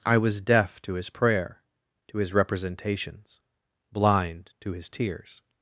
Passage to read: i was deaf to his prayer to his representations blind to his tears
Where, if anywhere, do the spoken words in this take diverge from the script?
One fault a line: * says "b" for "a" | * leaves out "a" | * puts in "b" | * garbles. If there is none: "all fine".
all fine